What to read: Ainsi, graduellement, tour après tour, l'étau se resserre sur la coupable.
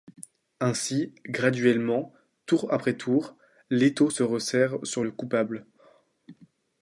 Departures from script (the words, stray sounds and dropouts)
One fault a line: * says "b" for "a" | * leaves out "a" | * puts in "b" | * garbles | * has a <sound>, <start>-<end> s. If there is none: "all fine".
* says "le" for "la"